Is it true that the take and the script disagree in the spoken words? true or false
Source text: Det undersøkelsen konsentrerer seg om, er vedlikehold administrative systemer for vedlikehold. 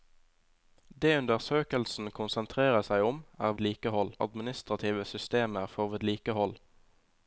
false